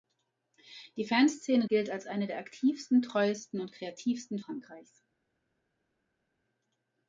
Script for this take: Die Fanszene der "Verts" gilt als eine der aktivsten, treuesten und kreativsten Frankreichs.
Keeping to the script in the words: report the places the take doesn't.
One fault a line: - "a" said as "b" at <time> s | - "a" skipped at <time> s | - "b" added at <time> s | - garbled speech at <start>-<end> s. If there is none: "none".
- "der Verts" skipped at 1.7 s